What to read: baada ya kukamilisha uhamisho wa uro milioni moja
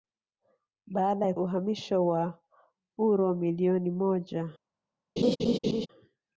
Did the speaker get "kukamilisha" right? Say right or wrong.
wrong